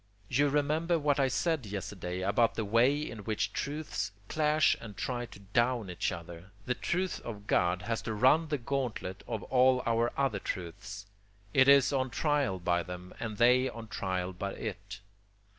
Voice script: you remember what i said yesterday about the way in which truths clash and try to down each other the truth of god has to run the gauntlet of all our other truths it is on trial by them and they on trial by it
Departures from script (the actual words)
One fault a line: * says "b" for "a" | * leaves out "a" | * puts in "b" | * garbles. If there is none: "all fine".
all fine